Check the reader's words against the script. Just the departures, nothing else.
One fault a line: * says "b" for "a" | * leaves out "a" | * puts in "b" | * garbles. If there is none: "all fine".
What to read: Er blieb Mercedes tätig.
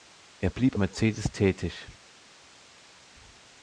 all fine